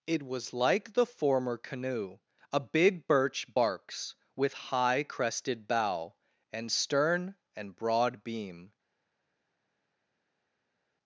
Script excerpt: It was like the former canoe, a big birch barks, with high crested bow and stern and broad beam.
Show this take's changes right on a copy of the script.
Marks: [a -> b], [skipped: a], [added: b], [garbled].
It was like the former canoe, a big birch barks, with high crested bow and stern and broad beam.